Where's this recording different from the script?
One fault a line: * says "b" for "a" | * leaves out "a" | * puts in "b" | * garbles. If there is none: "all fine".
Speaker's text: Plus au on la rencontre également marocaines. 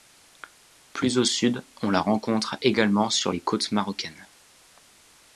* puts in "sud"
* puts in "sur les côtes"